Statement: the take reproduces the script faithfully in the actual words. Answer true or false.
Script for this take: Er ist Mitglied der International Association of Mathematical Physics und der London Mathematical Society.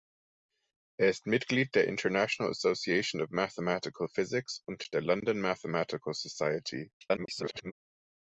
false